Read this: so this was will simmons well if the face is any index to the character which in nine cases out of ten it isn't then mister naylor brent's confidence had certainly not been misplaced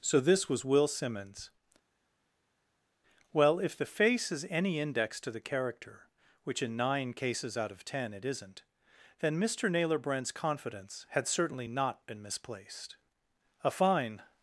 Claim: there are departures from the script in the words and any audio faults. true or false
true